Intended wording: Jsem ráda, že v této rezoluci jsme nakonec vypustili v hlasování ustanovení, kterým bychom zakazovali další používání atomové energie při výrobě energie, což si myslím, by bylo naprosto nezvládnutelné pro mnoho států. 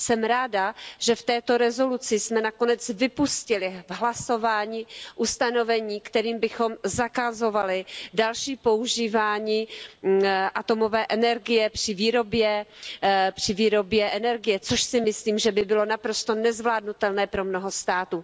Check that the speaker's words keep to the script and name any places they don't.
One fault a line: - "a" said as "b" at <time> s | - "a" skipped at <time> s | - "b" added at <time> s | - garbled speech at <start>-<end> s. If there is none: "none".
- "že" added at 15.4 s